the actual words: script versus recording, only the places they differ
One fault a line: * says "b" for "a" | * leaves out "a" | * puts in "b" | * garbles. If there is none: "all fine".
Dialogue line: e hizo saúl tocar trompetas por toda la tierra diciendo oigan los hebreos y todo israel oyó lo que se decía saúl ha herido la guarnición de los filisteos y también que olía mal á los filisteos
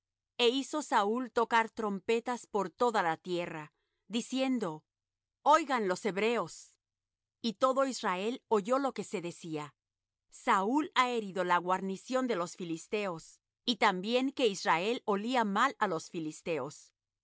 * puts in "israel"